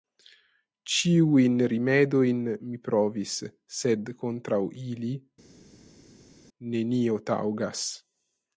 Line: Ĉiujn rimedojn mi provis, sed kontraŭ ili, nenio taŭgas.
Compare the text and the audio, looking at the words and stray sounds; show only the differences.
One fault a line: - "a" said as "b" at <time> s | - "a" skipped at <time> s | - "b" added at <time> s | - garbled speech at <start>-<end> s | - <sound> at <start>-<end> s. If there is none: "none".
none